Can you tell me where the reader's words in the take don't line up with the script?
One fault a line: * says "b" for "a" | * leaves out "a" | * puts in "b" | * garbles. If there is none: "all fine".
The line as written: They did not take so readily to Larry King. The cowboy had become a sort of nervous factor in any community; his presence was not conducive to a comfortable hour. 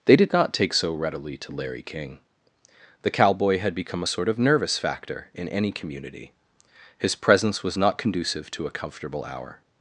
all fine